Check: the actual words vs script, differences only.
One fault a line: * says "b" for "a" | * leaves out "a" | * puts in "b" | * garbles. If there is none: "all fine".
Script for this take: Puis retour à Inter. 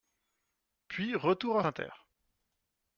all fine